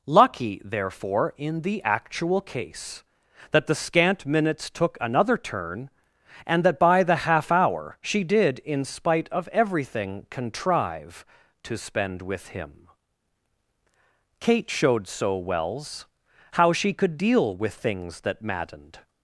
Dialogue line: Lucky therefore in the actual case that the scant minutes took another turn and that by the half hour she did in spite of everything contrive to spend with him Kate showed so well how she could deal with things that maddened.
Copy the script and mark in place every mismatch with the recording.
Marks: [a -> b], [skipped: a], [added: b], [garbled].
Lucky therefore in the actual case that the scant minutes took another turn and that by the half hour she did in spite of everything contrive to spend with him Kate showed so [well -> wells] how she could deal with things that maddened.